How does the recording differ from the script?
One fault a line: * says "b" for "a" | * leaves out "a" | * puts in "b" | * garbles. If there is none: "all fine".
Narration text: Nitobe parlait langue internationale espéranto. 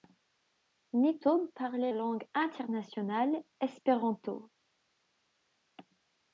all fine